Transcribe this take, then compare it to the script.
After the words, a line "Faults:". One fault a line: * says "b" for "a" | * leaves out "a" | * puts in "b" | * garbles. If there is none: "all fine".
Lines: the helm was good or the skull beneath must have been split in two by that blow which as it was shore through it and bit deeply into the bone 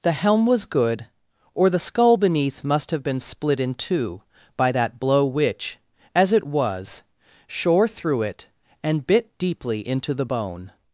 the helm was good or the skull beneath must have been split in two by that blow which as it was shore through it and bit deeply into the bone
Faults:
all fine